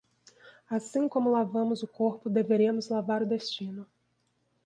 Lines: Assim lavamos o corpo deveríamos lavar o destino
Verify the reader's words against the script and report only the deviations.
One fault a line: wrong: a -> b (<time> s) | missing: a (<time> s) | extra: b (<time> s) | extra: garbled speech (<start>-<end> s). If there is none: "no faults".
extra: como (1.1 s)